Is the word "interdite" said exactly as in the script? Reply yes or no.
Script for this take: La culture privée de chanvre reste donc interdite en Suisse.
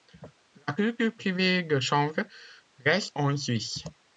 no